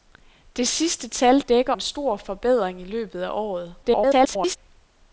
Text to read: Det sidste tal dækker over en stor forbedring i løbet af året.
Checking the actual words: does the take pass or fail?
fail